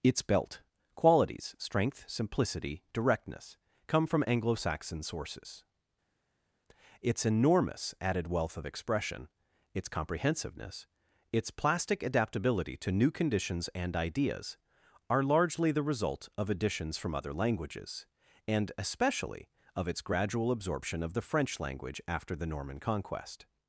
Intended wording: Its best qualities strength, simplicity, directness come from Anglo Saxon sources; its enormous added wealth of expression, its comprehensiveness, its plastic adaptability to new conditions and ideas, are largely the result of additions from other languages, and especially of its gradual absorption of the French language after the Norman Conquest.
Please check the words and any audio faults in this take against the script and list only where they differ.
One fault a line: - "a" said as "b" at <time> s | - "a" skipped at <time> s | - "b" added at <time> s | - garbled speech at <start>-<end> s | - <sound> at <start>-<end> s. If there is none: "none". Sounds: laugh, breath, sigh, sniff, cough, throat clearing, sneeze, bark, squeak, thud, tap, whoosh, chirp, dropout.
- "best" said as "belt" at 0.2 s